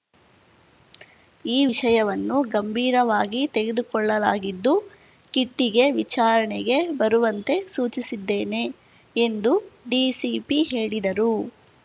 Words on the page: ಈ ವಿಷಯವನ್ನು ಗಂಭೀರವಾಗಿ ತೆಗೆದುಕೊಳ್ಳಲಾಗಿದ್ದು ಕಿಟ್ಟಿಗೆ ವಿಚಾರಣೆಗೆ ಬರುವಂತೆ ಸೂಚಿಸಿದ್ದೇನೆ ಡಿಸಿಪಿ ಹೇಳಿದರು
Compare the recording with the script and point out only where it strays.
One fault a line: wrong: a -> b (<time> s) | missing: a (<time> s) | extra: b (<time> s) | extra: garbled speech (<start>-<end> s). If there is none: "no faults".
extra: ಎಂದು (9.2 s)